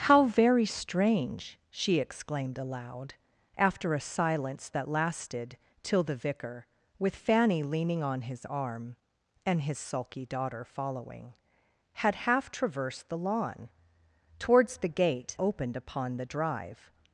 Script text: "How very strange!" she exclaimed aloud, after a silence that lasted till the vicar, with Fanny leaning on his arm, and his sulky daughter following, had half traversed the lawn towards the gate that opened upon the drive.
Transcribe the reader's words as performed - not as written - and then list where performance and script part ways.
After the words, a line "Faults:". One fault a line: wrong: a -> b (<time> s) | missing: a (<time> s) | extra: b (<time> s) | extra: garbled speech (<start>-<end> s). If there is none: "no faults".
"How very strange!" she exclaimed aloud, after a silence that lasted till the vicar, with Fanny leaning on his arm, and his sulky daughter following, had half traversed the lawn towards the gate opened upon the drive.
Faults:
missing: that (15.4 s)